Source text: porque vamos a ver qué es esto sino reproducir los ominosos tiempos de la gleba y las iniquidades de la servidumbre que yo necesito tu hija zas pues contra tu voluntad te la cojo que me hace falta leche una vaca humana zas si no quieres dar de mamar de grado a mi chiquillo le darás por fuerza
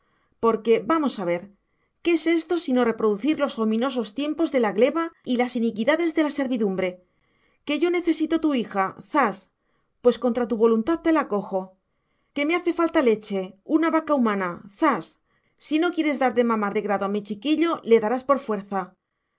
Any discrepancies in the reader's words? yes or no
no